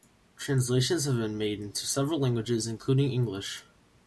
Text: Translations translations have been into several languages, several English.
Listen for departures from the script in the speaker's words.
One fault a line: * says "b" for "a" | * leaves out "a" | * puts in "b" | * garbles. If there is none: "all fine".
* leaves out "translations"
* puts in "made"
* says "including" for "several"